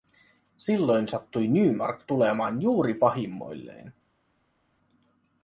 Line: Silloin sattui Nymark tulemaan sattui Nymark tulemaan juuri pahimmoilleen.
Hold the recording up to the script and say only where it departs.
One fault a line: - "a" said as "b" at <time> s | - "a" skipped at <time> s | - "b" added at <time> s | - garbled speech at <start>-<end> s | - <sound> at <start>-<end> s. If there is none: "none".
- "sattui Nymark tulemaan" skipped at 2.6 s